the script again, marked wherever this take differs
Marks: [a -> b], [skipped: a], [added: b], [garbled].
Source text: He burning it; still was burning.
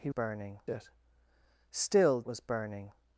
He burning it; still was burning.